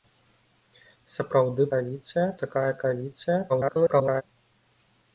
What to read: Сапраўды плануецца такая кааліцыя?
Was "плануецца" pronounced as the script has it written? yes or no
no